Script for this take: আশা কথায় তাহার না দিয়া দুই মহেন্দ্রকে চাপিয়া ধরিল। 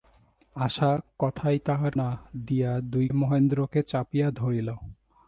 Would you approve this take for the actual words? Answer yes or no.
yes